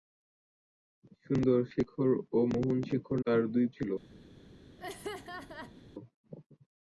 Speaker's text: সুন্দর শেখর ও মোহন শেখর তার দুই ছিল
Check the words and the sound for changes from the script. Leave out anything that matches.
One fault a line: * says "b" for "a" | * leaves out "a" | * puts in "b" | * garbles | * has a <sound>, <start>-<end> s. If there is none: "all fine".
* has a laugh, 4.8-5.8 s